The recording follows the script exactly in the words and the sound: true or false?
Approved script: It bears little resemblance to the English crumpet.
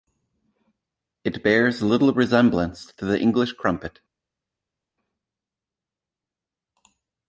true